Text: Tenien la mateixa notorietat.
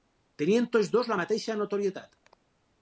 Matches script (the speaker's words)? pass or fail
fail